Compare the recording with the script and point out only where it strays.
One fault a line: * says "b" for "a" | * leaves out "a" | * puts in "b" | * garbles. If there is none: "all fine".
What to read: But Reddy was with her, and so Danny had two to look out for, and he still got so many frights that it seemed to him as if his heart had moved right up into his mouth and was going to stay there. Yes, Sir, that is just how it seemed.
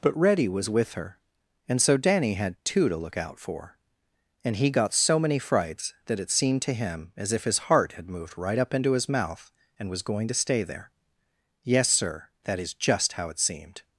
* leaves out "still"